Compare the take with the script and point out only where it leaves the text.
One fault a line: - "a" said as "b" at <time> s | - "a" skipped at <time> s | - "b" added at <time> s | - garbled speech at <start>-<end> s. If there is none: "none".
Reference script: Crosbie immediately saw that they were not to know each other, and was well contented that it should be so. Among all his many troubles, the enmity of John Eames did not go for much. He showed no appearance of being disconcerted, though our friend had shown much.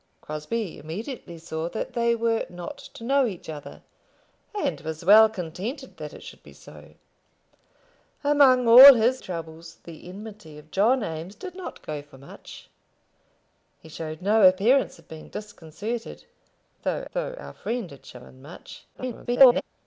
- "many" skipped at 9.2 s
- "though" added at 17.1 s
- garbled speech at 18.9-19.6 s